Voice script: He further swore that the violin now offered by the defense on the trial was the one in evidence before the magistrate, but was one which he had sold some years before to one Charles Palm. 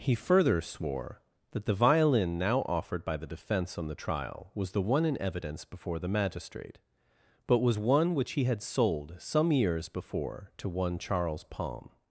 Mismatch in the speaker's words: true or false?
false